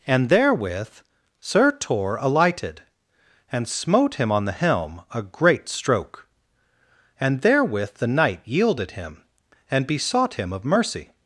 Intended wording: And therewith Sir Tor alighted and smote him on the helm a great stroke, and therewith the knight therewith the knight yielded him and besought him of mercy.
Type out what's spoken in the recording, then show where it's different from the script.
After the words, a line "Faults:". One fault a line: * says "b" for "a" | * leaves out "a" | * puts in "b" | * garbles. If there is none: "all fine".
And therewith Sir Tor alighted and smote him on the helm a great stroke, and therewith the knight yielded him and besought him of mercy.
Faults:
* leaves out "therewith the knight"